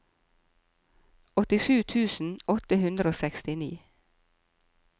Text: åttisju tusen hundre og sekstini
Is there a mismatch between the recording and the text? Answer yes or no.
yes